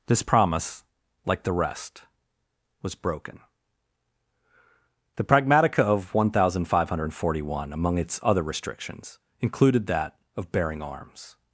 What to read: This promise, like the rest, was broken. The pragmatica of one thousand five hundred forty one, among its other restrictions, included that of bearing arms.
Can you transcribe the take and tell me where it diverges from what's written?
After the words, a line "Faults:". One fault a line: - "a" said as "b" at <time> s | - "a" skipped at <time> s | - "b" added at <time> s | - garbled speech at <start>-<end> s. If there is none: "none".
This promise, like the rest, was broken. The pragmatica of one thousand five hundred forty one, among its other restrictions, included that of bearing arms.
Faults:
none